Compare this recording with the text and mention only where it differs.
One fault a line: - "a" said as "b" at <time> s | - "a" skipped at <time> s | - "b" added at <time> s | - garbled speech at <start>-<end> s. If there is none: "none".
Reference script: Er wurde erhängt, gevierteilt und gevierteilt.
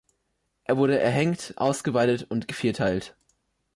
- "gevierteilt" said as "ausgeweidet" at 1.6 s